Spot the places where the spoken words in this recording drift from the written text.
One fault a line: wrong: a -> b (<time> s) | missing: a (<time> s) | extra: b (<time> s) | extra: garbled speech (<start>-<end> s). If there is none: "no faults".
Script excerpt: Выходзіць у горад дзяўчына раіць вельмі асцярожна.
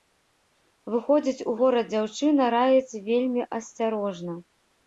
no faults